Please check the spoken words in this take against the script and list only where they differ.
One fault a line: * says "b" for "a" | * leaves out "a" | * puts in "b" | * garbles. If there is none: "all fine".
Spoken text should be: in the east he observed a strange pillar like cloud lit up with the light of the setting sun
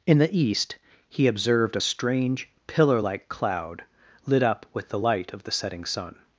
all fine